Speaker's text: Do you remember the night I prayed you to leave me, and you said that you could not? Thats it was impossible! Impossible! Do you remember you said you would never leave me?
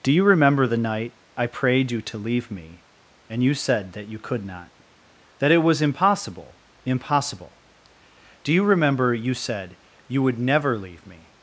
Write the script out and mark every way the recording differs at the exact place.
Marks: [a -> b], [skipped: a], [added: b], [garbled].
Do you remember the night I prayed you to leave me, and you said that you could not? [Thats -> That] it was impossible! Impossible! Do you remember you said you would never leave me?